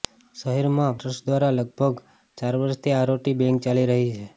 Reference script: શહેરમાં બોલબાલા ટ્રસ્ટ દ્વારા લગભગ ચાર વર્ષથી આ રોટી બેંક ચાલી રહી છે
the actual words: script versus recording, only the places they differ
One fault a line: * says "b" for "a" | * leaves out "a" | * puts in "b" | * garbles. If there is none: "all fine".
* leaves out "બોલબાલા"